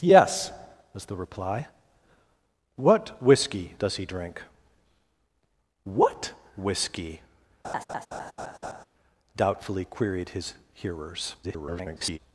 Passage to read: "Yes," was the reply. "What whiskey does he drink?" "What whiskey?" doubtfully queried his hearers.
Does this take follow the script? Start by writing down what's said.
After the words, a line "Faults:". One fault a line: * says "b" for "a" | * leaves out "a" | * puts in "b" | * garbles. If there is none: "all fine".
"Yes," was the reply. "What whiskey does he drink?" "What whiskey?" doubtfully queried his hearers. [garbled]
Faults:
* garbles